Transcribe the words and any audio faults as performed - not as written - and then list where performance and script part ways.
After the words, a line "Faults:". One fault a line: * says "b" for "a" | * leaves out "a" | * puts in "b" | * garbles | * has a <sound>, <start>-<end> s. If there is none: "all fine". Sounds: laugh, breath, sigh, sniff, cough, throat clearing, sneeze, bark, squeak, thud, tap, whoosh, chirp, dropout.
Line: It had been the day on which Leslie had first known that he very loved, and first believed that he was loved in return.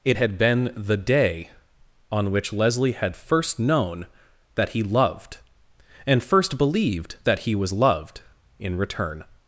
It had been the day on which Leslie had first known that he loved, and first believed that he was loved in return.
Faults:
* leaves out "very"